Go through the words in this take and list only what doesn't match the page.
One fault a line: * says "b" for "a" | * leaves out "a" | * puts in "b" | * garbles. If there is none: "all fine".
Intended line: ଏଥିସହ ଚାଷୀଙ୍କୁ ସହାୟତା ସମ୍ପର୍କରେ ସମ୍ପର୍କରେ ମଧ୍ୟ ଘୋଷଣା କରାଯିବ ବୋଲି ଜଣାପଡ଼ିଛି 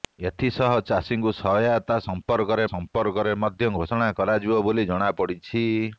all fine